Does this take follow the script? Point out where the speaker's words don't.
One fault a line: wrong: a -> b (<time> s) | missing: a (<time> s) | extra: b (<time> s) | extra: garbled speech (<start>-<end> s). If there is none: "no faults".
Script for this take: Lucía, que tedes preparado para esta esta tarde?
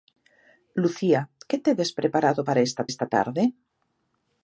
no faults